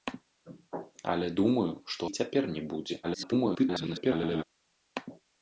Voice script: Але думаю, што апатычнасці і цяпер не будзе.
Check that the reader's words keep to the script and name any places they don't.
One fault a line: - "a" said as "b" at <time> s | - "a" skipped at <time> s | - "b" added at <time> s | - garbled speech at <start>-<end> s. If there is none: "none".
- "апатычнасці" skipped at 2.0 s
- garbled speech at 3.0-4.4 s